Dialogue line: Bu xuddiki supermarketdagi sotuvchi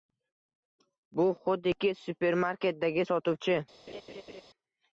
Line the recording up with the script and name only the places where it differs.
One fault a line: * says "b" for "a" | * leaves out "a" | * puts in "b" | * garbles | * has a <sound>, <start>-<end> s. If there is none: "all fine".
* has a laugh, 3.9-4.4 s